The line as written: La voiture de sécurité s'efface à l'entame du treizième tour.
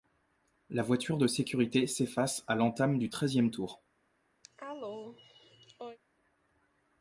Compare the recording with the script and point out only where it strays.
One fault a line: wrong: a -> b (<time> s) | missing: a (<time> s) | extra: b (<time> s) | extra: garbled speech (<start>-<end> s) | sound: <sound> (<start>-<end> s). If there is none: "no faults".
sound: cough (4.4-6.0 s)